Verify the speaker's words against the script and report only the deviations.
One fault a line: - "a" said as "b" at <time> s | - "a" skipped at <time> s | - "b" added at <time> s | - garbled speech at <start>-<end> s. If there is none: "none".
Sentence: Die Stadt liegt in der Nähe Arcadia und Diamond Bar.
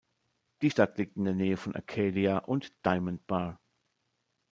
- "von" added at 1.6 s